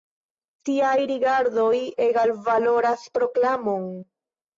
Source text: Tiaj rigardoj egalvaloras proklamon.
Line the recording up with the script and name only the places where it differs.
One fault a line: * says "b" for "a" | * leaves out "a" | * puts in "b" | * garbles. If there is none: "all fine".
all fine